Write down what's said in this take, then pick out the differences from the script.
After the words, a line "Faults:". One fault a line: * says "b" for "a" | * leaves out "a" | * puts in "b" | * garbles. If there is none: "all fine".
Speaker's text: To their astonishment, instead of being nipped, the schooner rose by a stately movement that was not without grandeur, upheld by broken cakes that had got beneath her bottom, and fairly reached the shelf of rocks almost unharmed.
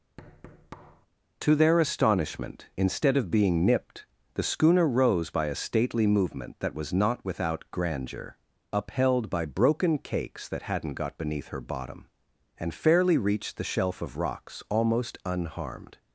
To their astonishment, instead of being nipped, the schooner rose by a stately movement that was not without grandeur, upheld by broken cakes that hadn't got beneath her bottom, and fairly reached the shelf of rocks almost unharmed.
Faults:
* says "hadn't" for "had"